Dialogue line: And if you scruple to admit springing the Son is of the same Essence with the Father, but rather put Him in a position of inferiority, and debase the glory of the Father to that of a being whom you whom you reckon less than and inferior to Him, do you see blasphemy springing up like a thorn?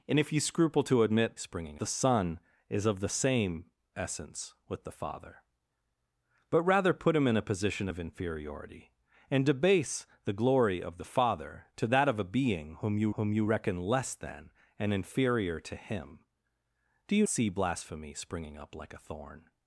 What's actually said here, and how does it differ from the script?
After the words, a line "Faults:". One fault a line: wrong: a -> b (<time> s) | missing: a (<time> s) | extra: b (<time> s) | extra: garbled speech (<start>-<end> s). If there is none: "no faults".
And if you scruple to admit springing the Son is of the same Essence with the Father, but rather put Him in a position of inferiority, and debase the glory of the Father to that of a being whom you whom you reckon less than and inferior to Him, do you see blasphemy springing up like a thorn?
Faults:
no faults